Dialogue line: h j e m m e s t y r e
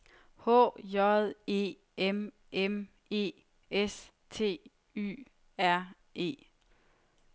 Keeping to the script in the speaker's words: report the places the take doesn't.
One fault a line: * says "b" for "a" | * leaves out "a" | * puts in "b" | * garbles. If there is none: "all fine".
all fine